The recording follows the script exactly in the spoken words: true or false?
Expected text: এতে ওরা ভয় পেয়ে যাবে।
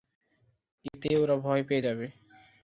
true